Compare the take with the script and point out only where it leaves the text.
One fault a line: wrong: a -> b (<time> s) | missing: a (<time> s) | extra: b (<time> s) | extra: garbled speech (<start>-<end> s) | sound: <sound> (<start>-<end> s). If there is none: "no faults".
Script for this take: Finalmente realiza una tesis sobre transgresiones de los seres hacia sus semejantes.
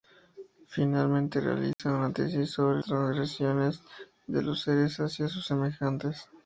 sound: dropout (1.7-1.8 s)